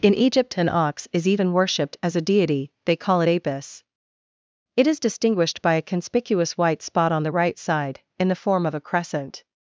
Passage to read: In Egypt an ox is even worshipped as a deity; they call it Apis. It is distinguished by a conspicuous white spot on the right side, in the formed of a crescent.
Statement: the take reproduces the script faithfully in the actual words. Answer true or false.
false